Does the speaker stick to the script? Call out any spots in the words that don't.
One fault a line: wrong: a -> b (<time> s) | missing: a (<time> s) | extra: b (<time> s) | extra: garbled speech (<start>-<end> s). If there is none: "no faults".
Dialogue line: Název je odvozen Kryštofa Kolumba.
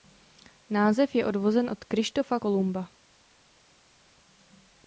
extra: od (1.7 s)